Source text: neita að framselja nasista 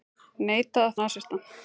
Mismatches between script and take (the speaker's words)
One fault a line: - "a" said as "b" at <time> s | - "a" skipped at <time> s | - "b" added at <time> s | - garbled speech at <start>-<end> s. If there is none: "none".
- "framselja" skipped at 1.0 s